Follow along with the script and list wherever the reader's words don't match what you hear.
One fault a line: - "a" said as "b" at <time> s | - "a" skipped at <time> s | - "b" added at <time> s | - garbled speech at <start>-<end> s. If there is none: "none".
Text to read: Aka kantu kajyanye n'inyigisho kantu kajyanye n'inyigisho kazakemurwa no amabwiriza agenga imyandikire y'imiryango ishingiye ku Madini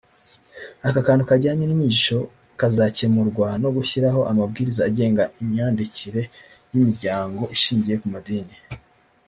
- "kantu kajyanye n'inyigisho" skipped at 2.2 s
- "gushyiraho" added at 3.8 s